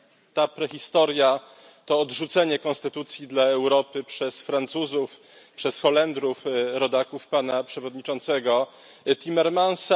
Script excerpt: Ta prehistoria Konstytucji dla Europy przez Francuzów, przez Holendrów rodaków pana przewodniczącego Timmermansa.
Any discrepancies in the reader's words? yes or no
yes